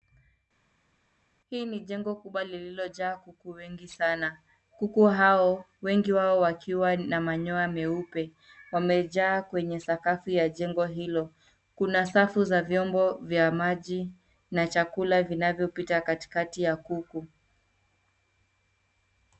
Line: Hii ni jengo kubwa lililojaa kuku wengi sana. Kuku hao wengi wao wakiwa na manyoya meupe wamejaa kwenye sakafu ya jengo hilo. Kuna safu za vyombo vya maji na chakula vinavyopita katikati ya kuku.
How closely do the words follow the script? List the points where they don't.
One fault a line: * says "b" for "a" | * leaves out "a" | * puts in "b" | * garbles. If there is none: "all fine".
all fine